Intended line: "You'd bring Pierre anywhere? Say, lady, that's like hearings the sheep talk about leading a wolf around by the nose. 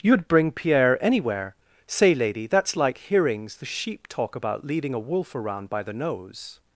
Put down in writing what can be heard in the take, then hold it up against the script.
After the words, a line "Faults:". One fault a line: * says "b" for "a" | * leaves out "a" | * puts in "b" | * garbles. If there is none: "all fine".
"You'd bring Pierre anywhere? Say, lady, that's like hearings the sheep talk about leading a wolf around by the nose.
Faults:
all fine